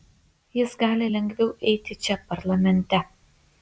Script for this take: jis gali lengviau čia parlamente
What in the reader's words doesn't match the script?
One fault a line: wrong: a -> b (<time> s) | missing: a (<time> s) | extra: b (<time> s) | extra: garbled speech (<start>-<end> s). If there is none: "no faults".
extra: eiti (1.7 s)